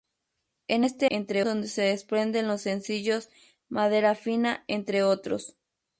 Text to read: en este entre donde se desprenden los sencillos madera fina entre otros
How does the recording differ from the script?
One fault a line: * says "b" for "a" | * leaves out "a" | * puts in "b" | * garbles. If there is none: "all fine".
all fine